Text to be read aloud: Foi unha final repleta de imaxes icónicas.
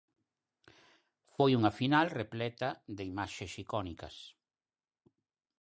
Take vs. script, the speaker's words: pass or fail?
pass